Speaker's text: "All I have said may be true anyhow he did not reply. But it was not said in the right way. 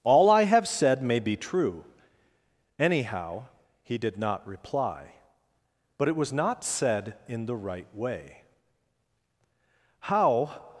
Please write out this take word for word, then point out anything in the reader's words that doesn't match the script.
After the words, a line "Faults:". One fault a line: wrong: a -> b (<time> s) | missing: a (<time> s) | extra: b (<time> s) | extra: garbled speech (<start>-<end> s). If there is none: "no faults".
"All I have said may be true anyhow he did not reply. But it was not said in the right way. How
Faults:
extra: How (10.0 s)